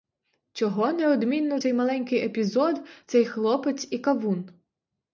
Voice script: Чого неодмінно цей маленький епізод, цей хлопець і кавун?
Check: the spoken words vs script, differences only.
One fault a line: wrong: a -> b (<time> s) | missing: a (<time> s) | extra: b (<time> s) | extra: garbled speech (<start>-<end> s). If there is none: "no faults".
no faults